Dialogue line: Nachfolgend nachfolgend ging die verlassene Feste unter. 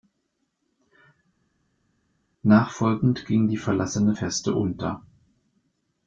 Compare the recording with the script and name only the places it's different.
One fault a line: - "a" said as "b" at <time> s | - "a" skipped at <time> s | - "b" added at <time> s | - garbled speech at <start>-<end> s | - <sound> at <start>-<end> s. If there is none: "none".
- "nachfolgend" skipped at 3.2 s